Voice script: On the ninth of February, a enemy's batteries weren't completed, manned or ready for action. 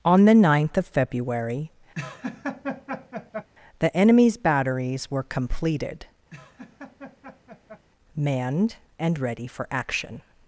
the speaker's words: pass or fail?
fail